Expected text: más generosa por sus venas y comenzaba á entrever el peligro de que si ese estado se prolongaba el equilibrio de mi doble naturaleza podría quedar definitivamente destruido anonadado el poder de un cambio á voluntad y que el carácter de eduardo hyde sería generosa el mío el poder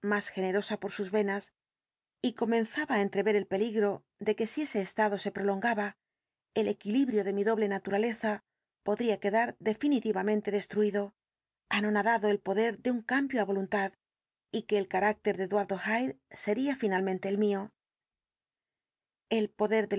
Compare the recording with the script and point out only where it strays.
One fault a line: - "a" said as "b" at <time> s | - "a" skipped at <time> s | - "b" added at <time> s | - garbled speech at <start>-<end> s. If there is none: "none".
- "generosa" said as "finalmente" at 16.8 s